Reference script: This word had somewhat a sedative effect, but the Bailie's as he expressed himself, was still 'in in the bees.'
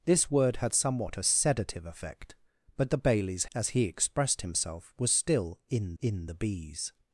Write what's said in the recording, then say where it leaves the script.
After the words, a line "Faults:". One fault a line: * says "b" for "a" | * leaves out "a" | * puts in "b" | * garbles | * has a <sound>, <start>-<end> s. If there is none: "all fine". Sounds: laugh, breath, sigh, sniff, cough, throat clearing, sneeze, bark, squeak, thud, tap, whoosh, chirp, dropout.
This word had somewhat a sedative effect, but the Bailie's as he expressed himself, was still 'in in the bees.'
Faults:
all fine